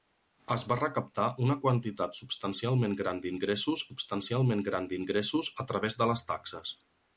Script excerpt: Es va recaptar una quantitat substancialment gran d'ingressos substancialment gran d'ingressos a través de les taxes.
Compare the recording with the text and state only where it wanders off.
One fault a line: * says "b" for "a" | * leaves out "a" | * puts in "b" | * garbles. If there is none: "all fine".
all fine